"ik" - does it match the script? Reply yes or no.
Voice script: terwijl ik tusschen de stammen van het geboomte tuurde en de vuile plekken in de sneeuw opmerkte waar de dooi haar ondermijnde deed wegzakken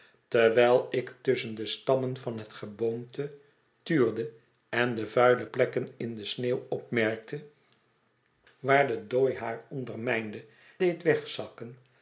yes